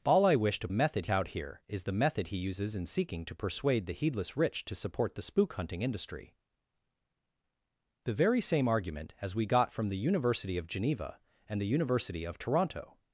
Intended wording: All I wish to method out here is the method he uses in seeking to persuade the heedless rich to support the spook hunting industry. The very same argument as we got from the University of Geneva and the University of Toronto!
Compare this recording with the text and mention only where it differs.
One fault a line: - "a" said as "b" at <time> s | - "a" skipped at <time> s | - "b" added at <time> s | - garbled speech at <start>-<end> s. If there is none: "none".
none